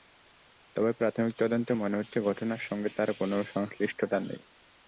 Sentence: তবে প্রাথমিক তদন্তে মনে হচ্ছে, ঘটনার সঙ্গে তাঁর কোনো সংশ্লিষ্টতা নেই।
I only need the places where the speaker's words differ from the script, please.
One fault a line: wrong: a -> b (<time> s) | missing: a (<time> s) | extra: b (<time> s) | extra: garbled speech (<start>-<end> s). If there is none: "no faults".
no faults